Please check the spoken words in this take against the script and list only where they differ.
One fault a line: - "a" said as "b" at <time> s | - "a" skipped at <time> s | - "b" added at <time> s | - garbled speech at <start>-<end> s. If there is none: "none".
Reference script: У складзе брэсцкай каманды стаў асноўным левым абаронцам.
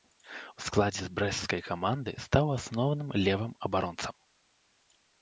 none